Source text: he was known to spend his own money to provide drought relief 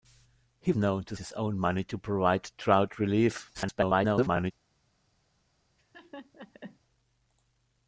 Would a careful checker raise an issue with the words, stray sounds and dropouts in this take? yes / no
yes